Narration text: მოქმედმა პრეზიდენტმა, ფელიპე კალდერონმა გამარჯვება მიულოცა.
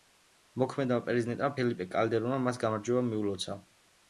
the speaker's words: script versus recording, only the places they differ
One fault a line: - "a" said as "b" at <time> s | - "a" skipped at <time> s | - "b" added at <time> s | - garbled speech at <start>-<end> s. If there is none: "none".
- "მას" added at 2.5 s